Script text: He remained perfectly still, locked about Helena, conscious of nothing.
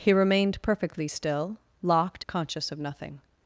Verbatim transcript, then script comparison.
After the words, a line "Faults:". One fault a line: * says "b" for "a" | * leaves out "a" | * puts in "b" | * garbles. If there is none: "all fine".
He remained perfectly still, locked conscious of nothing.
Faults:
* leaves out "about Helena"